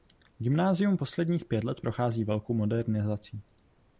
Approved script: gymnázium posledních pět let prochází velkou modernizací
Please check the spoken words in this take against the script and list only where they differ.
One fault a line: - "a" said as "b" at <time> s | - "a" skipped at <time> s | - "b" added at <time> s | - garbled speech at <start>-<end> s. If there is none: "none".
none